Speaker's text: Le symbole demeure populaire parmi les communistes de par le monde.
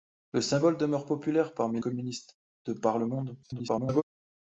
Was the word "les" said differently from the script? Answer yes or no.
yes